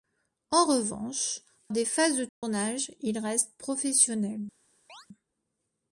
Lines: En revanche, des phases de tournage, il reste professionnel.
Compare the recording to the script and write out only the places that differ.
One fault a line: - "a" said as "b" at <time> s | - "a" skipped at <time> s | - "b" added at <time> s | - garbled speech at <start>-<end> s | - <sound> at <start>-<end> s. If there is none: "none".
- dropout at 2.3-2.4 s
- chirp at 4.9-5.1 s